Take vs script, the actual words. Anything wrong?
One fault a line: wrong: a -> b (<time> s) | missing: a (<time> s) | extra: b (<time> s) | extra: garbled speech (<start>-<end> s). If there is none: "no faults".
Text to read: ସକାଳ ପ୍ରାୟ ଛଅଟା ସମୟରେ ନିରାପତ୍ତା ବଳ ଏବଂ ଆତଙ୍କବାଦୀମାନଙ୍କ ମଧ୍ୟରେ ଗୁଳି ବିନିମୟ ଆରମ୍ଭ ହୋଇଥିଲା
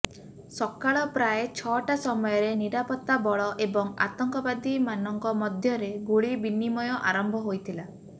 no faults